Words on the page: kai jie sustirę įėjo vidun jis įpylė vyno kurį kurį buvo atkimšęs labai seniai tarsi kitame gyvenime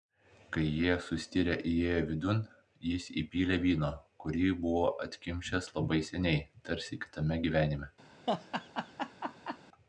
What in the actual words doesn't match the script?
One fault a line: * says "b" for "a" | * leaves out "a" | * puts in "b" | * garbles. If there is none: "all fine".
* leaves out "kurį"